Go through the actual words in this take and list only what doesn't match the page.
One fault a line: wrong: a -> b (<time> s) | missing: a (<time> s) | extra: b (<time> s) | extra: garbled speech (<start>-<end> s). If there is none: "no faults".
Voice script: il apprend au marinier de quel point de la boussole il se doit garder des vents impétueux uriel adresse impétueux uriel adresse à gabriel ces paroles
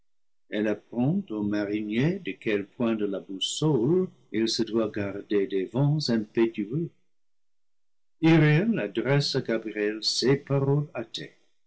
wrong: il -> elle (0.5 s)
missing: impétueux uriel adresse (9.3 s)